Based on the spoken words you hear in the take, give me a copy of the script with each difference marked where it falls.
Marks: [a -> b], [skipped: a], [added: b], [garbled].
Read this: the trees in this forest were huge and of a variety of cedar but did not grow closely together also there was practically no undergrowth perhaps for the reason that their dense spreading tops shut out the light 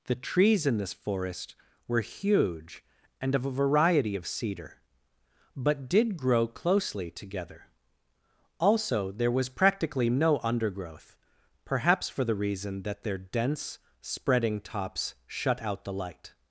the trees in this forest were huge and of a variety of cedar but did [skipped: not] grow closely together also there was practically no undergrowth perhaps for the reason that their dense spreading tops shut out the light